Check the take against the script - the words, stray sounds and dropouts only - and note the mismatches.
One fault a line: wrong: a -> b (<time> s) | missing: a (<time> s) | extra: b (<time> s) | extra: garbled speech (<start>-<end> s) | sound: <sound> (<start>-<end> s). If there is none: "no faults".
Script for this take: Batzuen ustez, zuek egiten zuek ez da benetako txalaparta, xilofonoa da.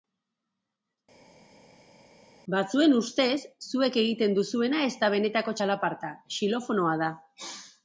wrong: zuek -> duzuena (4.4 s)